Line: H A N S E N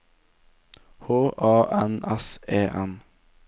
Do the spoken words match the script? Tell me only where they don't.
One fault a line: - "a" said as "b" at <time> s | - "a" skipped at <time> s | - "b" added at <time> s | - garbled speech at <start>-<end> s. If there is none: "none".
none